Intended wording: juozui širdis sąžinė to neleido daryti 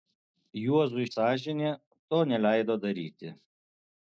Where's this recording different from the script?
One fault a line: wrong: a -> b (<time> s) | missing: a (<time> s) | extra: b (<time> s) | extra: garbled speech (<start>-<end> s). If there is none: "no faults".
missing: širdis (1.1 s)